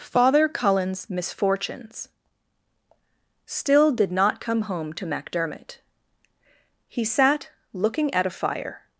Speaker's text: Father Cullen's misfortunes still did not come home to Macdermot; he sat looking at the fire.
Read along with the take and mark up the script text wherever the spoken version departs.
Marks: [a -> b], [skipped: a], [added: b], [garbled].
Father Cullen's misfortunes still did not come home to Macdermot; he sat looking at [the -> a] fire.